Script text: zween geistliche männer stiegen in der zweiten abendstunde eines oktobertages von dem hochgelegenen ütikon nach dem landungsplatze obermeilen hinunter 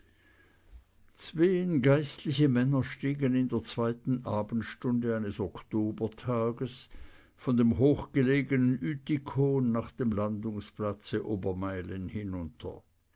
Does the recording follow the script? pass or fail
pass